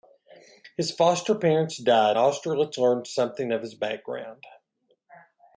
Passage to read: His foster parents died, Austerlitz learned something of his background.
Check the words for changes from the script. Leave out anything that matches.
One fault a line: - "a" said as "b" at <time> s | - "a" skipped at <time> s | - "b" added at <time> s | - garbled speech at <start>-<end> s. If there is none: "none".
none